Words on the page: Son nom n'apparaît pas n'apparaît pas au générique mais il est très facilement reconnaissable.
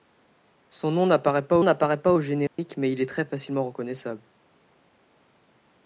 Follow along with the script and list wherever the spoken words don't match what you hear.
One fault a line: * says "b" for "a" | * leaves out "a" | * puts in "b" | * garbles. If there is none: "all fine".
all fine